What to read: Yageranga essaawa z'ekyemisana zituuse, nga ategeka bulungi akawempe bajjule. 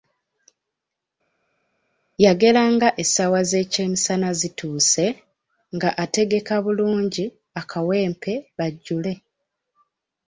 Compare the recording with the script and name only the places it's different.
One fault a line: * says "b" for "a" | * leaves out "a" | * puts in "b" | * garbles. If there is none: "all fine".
all fine